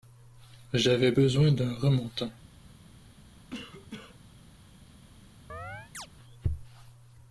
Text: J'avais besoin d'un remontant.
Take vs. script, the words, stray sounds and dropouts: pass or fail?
fail